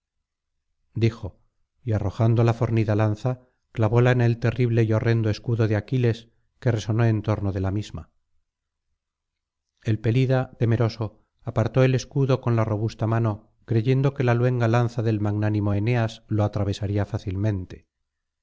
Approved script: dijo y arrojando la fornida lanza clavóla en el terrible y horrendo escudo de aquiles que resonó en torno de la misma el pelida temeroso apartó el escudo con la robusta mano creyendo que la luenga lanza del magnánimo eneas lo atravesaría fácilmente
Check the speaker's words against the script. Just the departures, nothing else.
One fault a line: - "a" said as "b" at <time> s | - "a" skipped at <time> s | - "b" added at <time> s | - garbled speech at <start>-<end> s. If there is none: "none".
none